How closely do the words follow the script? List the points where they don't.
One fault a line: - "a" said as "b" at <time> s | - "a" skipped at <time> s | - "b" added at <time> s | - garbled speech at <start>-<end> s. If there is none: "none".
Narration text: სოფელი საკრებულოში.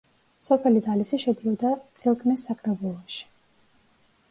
- "ძალისი შედიოდა წილკნის" added at 0.8 s